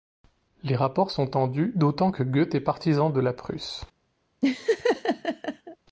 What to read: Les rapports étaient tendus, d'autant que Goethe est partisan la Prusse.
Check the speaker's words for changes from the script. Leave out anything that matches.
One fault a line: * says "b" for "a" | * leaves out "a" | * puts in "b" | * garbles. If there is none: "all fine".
* says "sont" for "étaient"
* puts in "de"